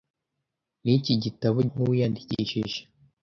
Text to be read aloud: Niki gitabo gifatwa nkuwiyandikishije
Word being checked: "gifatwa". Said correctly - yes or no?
no